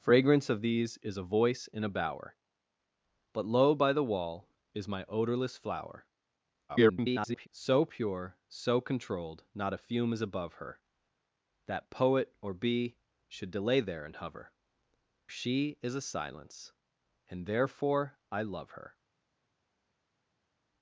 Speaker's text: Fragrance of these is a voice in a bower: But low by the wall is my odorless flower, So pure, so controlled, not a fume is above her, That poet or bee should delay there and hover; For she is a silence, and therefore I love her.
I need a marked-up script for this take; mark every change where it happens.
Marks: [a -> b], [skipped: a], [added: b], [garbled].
Fragrance of these is a voice in a bower: But low by the wall is my odorless flower, [garbled] So pure, so controlled, not a fume is above her, That poet or bee should delay there and hover; [skipped: For] she is a silence, and therefore I love her.